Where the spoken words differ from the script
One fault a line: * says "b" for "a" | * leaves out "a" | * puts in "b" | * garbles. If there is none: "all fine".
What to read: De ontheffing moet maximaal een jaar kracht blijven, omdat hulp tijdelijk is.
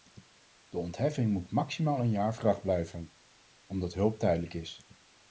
all fine